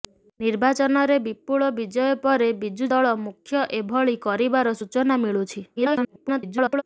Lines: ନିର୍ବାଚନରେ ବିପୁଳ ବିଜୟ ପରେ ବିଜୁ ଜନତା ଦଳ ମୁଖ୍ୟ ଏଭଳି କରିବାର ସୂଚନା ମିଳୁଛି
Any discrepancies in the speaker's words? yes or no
yes